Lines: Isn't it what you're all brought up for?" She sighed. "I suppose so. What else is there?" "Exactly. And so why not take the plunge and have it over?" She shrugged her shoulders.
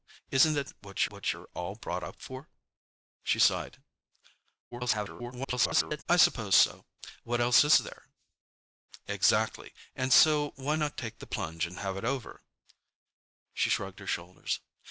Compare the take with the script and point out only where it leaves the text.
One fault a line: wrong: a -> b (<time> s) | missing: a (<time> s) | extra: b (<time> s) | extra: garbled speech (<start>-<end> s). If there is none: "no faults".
extra: what (1.1 s)
extra: garbled speech (4.7-6.0 s)